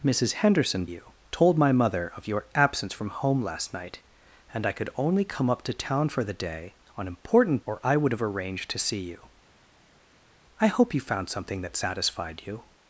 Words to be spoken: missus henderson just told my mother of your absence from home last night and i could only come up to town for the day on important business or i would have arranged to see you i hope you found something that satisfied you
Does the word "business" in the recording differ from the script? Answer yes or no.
yes